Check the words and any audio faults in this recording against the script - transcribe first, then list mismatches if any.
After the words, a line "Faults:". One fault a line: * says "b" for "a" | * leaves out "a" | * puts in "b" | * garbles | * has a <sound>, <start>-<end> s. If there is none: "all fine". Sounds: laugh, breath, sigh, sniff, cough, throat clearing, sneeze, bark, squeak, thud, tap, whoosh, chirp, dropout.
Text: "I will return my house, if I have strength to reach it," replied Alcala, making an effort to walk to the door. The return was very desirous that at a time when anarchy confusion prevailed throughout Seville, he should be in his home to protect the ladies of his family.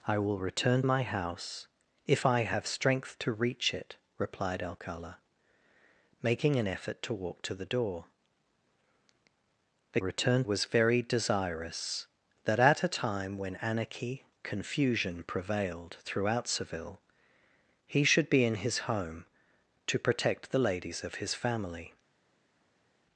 "I will return my house, if I have strength to reach it," replied Alcala, making an effort to walk to the door. The return was very desirous that at a time when anarchy confusion prevailed throughout Seville, he should be in his home to protect the ladies of his family.
Faults:
all fine